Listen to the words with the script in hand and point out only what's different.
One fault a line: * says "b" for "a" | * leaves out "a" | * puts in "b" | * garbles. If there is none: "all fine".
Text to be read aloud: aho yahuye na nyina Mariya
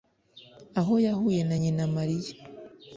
all fine